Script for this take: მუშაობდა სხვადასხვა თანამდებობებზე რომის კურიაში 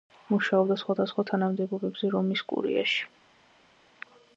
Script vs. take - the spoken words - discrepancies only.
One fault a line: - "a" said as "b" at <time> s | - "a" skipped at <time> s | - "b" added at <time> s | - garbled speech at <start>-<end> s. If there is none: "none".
none